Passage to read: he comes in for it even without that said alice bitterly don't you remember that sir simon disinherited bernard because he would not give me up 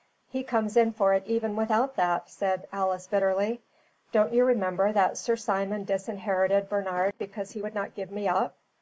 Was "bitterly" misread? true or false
false